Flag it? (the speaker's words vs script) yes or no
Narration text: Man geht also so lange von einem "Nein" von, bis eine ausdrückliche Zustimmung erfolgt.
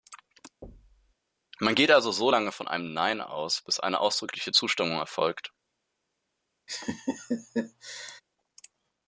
yes